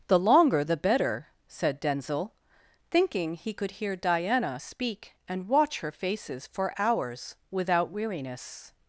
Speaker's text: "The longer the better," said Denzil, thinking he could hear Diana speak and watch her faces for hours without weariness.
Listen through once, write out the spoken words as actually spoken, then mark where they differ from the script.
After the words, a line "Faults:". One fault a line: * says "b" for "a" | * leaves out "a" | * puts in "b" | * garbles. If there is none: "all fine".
"The longer the better," said Denzil, thinking he could hear Diana speak and watch her faces for hours without weariness.
Faults:
all fine